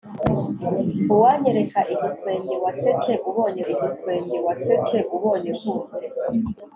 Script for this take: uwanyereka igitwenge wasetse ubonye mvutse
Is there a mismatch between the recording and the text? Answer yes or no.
yes